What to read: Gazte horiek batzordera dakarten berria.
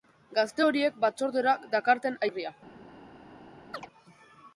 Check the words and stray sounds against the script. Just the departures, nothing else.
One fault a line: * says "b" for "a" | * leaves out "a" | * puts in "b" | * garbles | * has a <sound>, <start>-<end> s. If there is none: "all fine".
* has a chirp, 3.7-3.9 s